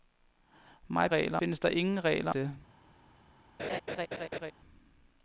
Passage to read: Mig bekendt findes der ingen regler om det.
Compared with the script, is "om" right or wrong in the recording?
wrong